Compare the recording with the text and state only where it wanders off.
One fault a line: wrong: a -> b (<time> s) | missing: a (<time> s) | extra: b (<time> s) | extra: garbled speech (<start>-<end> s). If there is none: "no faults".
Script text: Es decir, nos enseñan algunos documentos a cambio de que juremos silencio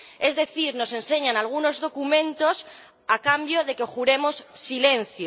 no faults